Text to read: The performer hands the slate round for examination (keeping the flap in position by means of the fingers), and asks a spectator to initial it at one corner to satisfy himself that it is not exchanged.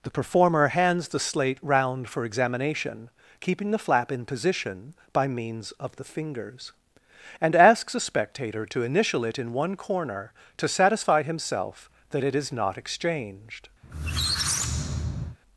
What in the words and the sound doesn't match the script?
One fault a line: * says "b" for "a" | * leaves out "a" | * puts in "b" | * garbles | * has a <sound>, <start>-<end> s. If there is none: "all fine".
* says "in" for "at"
* has a squeak, 13.8-15.4 s